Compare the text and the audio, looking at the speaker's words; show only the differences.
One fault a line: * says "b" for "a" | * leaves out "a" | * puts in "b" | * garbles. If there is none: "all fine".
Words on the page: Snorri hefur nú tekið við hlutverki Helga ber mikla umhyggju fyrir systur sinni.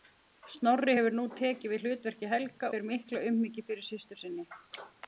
all fine